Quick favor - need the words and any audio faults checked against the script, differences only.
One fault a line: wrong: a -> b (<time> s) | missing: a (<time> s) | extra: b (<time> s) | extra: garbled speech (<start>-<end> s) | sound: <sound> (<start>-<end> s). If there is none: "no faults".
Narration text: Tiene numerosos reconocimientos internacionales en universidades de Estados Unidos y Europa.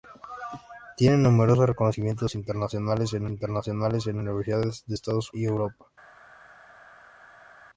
extra: internacionales en (3.3 s)
missing: Unidos (5.3 s)